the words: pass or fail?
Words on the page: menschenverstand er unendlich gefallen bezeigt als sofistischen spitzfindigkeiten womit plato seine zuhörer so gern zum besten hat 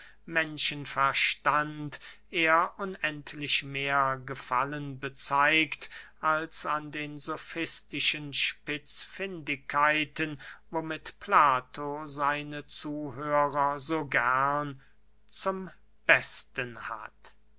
fail